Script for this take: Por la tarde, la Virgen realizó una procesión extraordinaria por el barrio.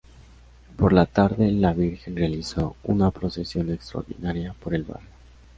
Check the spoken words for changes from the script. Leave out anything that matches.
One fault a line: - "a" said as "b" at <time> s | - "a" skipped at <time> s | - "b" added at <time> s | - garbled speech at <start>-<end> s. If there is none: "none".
none